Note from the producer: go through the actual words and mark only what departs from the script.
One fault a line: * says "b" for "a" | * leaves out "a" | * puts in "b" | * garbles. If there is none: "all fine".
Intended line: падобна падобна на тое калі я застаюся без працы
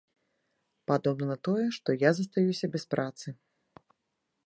* leaves out "падобна"
* says "што" for "калі"